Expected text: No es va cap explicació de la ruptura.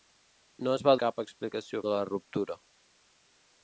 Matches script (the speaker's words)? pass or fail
pass